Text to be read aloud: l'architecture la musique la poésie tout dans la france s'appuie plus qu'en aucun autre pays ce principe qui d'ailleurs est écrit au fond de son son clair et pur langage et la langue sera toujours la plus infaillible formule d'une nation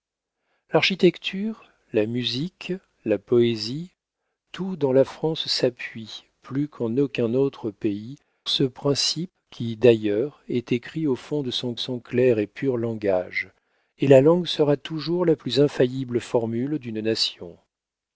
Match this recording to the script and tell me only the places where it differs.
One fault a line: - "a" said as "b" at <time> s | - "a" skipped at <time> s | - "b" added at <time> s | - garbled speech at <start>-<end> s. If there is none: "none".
none